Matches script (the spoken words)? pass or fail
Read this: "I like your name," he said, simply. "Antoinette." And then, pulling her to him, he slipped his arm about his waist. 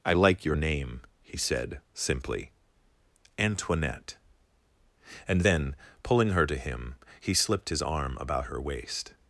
fail